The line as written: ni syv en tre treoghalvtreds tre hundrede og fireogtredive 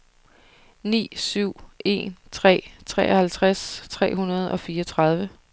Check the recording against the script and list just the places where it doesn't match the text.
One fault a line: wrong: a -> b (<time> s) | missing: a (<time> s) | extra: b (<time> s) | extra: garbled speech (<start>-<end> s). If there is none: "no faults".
no faults